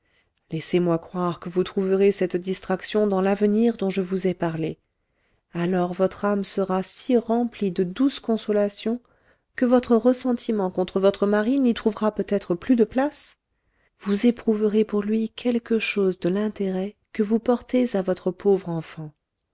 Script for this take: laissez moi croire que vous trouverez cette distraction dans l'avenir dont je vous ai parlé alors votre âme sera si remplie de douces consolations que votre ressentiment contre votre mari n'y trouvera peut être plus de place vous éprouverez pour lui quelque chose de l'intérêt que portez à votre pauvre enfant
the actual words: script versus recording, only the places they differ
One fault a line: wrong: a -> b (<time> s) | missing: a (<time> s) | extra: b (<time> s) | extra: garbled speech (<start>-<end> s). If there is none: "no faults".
extra: vous (17.2 s)